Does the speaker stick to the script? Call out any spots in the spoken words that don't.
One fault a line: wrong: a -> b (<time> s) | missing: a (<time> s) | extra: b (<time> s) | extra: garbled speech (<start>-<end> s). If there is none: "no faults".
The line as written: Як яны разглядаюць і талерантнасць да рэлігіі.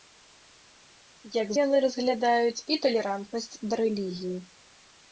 no faults